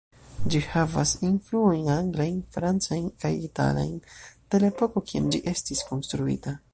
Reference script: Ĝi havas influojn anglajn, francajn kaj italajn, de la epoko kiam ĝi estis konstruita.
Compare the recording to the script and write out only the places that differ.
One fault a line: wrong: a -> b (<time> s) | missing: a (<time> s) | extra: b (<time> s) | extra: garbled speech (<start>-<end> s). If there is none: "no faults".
no faults